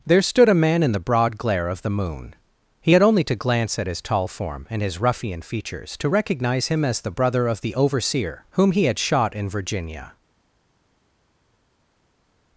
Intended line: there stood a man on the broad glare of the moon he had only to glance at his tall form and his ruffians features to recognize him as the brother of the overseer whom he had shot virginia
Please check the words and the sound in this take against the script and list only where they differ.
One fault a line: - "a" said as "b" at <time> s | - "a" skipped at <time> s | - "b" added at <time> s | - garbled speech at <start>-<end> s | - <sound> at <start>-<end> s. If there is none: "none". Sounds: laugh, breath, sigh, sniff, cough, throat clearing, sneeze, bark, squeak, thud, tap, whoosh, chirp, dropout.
- "on" said as "in" at 0.8 s
- "ruffians" said as "ruffian" at 5.0 s
- "in" added at 9.3 s